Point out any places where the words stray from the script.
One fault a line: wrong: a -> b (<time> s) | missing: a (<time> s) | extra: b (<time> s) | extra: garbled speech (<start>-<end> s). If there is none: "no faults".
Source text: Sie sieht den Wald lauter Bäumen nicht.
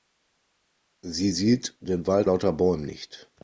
no faults